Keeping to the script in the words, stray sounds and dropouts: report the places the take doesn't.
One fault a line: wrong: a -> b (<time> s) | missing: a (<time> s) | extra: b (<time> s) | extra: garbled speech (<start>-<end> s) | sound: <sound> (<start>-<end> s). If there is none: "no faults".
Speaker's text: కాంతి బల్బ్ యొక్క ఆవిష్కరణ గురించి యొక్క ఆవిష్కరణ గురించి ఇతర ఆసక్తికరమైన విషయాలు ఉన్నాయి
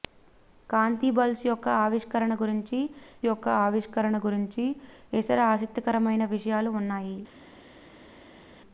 no faults